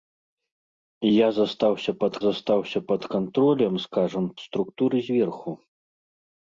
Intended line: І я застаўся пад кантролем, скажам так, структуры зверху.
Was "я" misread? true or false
false